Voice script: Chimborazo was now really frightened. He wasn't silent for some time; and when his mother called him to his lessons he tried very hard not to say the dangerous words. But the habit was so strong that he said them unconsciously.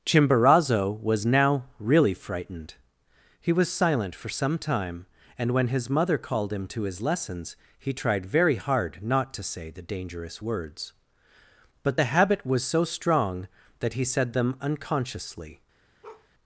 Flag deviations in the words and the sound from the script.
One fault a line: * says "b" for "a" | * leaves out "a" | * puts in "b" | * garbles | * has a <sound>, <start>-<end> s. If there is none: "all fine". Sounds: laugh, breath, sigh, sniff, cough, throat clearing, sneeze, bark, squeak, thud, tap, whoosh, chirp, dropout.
* says "was" for "wasn't"
* has a bark, 16.0-16.3 s